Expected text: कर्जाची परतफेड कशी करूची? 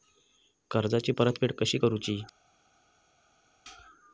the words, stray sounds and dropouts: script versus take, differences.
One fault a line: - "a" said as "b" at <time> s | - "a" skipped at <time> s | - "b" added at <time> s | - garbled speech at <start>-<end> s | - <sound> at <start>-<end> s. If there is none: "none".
none